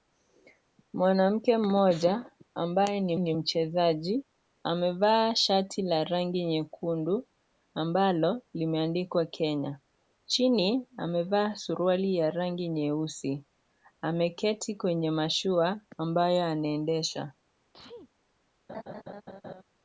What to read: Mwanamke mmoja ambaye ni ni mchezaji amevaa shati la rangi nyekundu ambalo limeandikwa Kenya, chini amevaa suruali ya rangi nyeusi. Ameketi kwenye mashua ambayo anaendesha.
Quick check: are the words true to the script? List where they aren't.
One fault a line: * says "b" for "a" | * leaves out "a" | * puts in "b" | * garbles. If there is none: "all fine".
all fine